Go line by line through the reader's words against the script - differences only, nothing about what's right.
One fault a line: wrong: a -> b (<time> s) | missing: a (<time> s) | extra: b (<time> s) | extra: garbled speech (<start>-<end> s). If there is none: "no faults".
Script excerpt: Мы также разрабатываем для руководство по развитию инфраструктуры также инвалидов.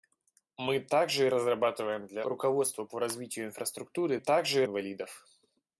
no faults